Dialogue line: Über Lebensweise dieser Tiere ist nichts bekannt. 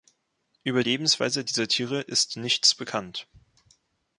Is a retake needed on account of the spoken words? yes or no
no